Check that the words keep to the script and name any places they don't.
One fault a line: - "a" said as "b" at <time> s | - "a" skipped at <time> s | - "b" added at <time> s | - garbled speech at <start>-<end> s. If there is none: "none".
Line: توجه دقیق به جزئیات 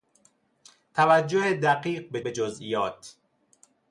- "به" added at 2.2 s